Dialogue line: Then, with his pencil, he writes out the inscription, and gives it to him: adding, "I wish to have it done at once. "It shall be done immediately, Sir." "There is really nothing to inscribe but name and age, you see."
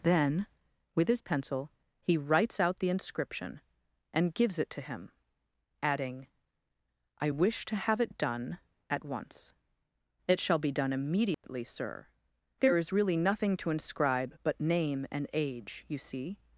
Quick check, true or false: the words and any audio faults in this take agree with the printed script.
false